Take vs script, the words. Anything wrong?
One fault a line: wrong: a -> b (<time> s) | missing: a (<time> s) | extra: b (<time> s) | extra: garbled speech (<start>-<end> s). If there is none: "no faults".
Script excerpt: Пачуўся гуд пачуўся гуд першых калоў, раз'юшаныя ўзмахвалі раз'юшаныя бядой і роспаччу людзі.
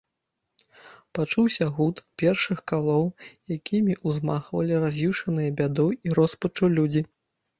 missing: пачуўся гуд (2.0 s)
wrong: раз'юшаныя -> якімі (3.6 s)